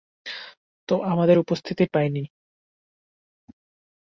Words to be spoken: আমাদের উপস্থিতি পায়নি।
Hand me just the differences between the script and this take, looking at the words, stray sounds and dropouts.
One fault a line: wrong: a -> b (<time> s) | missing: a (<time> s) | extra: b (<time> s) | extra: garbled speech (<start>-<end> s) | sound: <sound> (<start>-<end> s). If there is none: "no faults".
no faults